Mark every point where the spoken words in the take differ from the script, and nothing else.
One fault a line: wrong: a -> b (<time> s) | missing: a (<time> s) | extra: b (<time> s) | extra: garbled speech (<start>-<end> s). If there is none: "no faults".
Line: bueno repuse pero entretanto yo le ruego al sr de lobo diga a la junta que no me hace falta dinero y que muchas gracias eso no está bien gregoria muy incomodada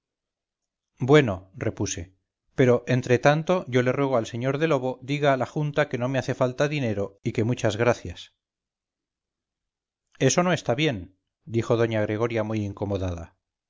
extra: dijo doña (11.4 s)